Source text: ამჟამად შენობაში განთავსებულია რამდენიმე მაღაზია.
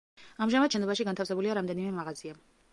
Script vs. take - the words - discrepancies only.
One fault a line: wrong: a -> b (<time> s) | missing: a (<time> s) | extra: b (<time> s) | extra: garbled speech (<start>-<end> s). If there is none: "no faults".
no faults